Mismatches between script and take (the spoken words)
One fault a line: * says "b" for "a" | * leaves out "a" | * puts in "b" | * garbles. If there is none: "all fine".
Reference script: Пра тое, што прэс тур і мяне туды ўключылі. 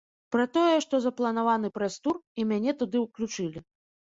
* puts in "запланаваны"